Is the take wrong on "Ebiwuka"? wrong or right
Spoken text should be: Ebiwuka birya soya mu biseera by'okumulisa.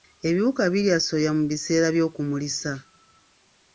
right